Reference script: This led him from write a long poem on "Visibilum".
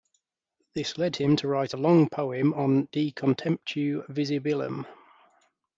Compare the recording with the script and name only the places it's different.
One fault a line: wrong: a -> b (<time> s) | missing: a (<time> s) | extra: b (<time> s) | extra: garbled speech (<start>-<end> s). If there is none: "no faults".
wrong: from -> to (1.4 s)
extra: De contemptu (2.9 s)